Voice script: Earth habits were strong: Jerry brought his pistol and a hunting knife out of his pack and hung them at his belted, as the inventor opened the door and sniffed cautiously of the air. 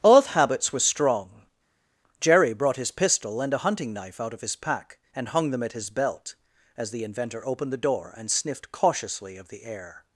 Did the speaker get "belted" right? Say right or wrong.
wrong